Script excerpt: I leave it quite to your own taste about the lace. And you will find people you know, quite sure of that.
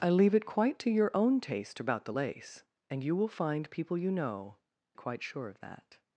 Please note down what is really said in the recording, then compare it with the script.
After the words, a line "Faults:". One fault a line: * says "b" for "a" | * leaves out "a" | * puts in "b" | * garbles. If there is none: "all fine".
I leave it quite to your own taste about the lace. And you will find people you know, quite sure of that.
Faults:
all fine